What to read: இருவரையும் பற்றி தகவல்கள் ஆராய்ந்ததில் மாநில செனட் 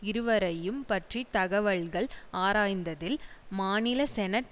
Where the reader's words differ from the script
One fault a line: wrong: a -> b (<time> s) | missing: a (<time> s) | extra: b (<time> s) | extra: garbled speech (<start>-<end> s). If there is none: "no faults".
no faults